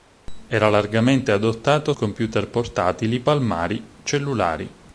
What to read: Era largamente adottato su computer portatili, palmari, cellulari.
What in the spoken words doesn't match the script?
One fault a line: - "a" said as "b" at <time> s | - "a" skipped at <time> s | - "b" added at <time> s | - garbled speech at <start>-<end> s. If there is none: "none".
- "su" skipped at 1.9 s